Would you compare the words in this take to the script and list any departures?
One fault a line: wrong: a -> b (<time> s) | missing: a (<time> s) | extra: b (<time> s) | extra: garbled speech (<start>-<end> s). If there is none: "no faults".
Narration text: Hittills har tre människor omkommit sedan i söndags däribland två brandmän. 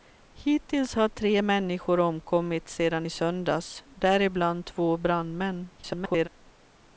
extra: garbled speech (5.8-6.3 s)